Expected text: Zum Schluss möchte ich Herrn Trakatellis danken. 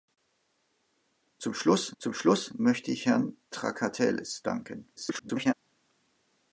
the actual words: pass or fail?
fail